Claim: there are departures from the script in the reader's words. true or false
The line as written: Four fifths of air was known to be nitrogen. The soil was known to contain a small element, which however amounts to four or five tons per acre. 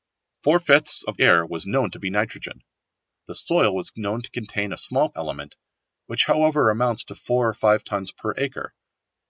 false